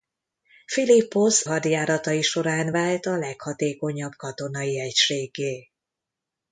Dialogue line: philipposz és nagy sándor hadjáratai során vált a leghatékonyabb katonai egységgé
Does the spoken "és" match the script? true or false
false